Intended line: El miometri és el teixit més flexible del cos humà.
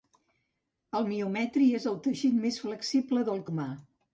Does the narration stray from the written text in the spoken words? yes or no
yes